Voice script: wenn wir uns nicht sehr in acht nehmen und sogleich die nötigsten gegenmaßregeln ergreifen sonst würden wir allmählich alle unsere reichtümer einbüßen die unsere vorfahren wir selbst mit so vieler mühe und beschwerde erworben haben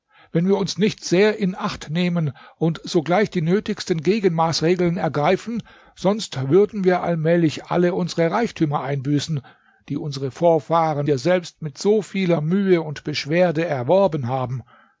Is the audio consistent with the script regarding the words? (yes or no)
yes